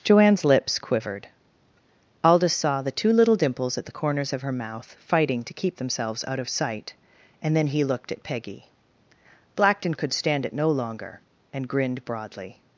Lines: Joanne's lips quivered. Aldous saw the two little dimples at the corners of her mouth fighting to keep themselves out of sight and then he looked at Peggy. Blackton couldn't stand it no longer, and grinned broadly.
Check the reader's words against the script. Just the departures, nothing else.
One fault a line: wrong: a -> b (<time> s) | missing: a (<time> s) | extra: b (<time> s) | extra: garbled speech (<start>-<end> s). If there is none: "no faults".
wrong: couldn't -> could (9.9 s)